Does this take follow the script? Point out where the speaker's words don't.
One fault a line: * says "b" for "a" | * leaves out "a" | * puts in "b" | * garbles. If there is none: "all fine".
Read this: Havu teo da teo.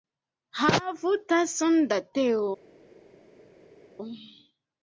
* says "tason" for "teo"